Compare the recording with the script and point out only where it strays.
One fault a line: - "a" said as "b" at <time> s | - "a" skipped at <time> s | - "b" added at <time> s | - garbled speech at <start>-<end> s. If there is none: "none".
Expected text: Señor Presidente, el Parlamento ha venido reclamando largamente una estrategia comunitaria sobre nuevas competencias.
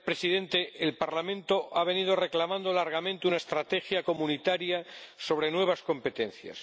none